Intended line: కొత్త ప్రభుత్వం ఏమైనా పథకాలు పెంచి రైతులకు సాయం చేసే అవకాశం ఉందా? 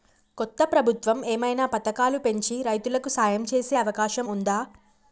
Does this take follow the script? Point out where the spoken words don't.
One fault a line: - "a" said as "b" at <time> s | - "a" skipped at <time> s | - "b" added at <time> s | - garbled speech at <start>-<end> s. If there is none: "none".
none